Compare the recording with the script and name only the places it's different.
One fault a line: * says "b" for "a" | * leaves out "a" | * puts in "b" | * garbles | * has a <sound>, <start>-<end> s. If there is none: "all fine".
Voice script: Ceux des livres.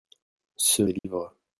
* has a dropout, 1.0-1.0 s